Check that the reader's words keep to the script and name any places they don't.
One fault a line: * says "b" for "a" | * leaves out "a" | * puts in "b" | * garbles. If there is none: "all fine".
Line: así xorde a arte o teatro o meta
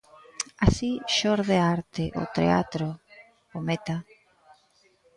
all fine